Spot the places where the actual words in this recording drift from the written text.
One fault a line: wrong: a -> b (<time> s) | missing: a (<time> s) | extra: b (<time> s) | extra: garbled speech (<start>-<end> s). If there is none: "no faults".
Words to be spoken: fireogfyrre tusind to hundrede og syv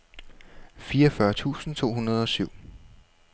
no faults